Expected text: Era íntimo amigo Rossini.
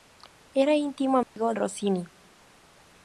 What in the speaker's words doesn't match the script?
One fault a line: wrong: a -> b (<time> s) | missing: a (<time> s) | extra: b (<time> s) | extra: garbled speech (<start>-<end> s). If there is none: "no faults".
no faults